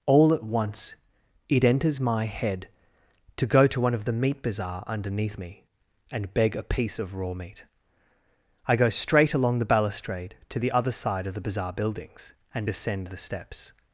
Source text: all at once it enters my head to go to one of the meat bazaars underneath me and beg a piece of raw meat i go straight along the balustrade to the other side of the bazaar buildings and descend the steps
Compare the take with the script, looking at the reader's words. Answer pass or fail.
fail